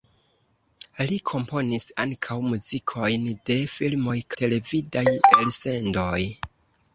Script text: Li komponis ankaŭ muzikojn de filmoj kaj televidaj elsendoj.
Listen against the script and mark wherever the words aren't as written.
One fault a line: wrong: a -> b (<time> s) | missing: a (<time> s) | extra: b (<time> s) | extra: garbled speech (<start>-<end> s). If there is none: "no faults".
missing: kaj (4.2 s)